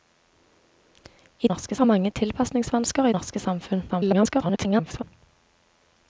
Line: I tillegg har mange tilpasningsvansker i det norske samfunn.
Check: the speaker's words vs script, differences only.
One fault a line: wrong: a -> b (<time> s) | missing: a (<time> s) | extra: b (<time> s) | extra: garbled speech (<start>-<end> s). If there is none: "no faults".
wrong: tillegg -> norske (1.5 s)
missing: det (3.1 s)
extra: garbled speech (3.9-5.0 s)